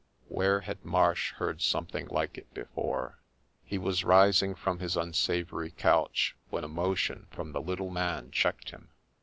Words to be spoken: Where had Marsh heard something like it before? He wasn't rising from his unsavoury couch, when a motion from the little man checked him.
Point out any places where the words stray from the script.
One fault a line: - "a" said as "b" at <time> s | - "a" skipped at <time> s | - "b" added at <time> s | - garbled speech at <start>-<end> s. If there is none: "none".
- "wasn't" said as "was" at 3.8 s